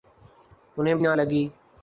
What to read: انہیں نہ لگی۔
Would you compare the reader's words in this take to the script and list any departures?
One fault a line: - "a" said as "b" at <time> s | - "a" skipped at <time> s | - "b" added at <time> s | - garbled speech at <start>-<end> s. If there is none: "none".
none